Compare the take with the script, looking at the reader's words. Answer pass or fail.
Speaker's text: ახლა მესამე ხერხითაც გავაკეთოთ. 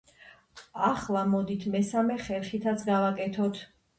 fail